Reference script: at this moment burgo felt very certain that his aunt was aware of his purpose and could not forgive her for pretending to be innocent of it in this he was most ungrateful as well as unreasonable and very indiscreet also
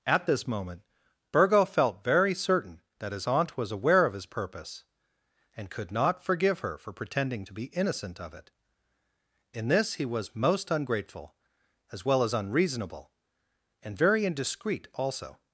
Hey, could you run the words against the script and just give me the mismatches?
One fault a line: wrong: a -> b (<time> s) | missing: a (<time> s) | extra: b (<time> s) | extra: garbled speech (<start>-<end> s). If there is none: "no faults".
no faults